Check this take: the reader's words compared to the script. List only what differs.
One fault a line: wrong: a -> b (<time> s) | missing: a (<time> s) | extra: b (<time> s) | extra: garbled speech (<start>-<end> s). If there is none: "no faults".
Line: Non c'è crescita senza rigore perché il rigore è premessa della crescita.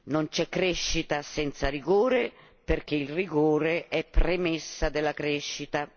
no faults